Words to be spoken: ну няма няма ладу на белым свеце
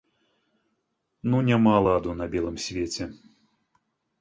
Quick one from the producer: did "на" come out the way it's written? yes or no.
yes